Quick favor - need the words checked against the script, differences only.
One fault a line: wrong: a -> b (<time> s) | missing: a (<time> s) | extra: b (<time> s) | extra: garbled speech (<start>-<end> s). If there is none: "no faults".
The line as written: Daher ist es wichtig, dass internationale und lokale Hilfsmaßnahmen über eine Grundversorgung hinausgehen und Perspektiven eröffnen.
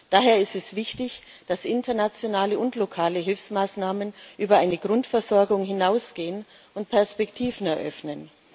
no faults